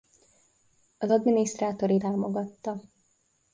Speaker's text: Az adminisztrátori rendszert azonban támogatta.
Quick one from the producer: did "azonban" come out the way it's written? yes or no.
no